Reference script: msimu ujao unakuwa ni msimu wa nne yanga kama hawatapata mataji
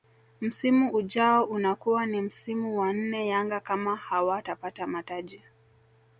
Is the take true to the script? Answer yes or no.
yes